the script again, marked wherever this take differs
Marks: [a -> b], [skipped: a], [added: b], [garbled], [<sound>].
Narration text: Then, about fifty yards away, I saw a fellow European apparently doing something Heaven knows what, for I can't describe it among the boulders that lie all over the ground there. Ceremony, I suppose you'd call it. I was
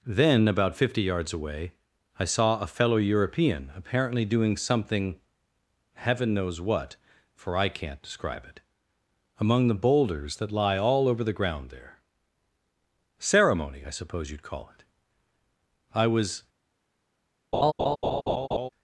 Then, about fifty yards away, I saw a fellow European apparently doing something Heaven knows what, for I can't describe it among the boulders that lie all over the ground there. Ceremony, I suppose you'd call it. I was [laugh]